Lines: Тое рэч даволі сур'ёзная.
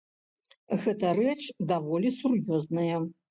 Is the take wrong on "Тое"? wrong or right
wrong